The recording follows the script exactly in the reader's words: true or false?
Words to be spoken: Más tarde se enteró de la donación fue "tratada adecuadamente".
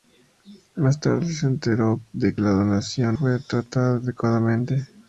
true